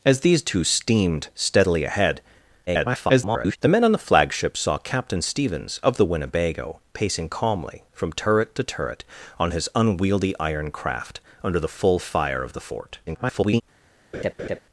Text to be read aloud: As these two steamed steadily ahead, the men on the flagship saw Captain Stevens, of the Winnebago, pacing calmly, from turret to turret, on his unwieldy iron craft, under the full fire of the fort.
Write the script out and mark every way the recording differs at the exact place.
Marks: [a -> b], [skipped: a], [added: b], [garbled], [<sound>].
As these two steamed steadily ahead, [garbled] the men on the flagship saw Captain Stevens, of the Winnebago, pacing calmly, from turret to turret, on his unwieldy iron craft, under the full fire of the fort. [garbled] [laugh]